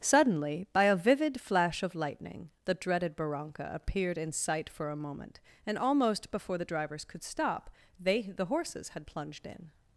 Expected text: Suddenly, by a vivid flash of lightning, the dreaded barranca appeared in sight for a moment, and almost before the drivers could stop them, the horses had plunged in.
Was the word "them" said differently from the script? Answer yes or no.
yes